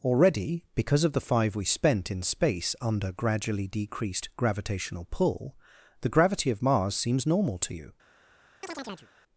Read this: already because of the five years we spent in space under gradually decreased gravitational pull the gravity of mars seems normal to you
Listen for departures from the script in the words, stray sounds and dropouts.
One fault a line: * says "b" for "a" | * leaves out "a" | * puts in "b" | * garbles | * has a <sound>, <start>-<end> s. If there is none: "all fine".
* leaves out "years"
* has a chirp, 8.6-9.1 s